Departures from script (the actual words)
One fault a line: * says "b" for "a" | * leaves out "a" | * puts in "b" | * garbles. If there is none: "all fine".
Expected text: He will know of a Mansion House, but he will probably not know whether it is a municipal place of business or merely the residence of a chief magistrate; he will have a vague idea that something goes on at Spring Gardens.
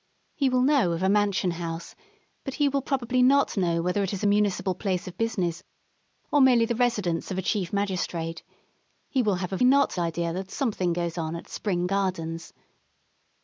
* says "not" for "vague"